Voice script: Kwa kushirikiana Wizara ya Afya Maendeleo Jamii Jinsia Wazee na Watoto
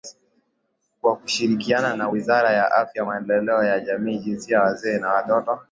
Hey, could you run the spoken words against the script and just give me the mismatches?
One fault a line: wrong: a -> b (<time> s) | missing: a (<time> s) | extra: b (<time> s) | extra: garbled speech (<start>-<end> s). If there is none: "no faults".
extra: na (1.9 s)
extra: ya (3.6 s)